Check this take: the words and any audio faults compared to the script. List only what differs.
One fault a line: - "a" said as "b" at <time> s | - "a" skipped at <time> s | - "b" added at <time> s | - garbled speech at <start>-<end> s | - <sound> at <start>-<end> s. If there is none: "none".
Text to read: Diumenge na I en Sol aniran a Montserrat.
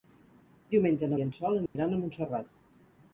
- dropout at 1.7-1.8 s